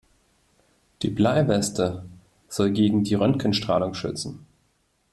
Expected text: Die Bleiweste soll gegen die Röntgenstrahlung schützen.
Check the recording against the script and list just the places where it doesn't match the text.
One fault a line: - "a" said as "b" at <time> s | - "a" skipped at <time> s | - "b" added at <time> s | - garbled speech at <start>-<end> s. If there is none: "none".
none